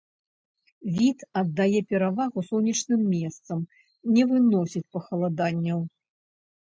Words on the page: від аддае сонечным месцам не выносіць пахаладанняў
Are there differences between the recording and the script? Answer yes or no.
yes